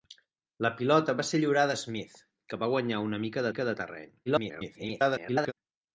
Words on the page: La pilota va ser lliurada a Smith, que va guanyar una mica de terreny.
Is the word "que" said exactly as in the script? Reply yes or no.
yes